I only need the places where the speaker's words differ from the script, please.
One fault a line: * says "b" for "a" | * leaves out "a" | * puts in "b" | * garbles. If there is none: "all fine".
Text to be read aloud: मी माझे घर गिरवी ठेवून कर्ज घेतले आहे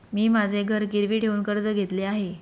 all fine